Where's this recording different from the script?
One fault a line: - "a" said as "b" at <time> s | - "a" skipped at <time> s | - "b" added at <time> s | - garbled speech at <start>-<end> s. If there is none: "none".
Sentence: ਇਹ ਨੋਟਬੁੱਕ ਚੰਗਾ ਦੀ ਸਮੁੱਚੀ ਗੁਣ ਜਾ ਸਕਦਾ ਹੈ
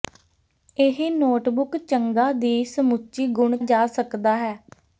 none